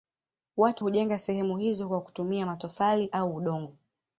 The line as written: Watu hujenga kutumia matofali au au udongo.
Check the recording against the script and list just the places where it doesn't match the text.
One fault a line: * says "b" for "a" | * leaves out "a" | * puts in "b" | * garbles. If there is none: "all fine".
* puts in "sehemu hizo kwa"
* leaves out "au"